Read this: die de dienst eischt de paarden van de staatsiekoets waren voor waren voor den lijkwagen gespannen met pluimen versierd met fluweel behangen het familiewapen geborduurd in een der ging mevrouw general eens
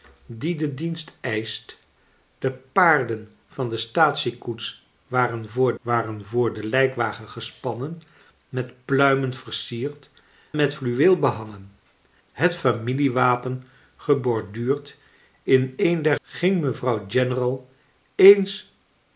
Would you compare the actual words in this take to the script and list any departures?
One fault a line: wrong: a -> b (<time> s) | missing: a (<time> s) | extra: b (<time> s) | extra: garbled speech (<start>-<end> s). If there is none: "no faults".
no faults